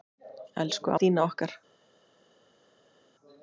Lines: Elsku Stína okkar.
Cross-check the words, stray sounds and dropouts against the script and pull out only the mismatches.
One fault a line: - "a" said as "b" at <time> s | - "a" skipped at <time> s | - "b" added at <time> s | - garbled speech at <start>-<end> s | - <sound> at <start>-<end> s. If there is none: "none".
none